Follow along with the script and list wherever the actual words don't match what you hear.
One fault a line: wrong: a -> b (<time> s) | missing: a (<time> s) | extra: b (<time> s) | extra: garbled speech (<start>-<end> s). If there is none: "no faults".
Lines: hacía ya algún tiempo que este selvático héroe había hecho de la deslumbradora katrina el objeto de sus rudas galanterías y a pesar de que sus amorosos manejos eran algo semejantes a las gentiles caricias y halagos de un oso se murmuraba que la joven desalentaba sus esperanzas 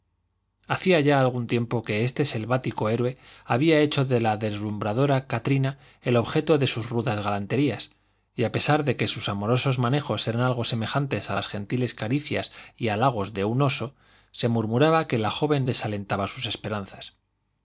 no faults